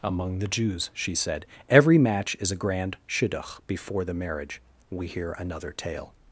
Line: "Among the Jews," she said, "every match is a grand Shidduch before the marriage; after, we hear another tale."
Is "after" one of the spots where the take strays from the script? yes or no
yes